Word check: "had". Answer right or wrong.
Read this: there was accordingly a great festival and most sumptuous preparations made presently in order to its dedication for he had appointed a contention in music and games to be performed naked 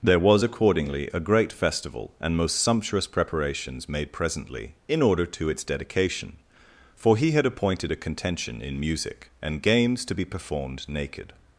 right